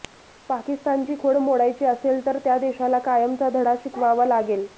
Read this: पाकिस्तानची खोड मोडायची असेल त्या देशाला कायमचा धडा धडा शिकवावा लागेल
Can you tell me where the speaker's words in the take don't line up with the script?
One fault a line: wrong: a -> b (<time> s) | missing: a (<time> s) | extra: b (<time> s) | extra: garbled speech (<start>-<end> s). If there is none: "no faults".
extra: तर (2.2 s)
missing: धडा (3.7 s)